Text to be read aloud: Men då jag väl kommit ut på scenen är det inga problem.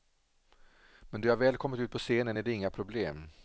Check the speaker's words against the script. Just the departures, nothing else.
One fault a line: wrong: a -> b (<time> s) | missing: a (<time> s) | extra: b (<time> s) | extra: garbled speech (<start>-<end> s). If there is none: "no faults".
no faults